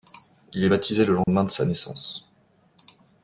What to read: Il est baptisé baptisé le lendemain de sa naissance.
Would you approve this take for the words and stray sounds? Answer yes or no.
no